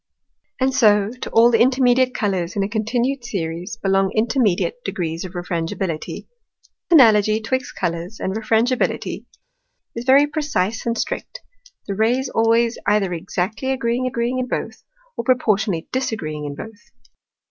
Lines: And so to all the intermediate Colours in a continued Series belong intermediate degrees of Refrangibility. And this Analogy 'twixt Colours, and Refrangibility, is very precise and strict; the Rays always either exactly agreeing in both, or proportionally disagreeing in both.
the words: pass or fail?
fail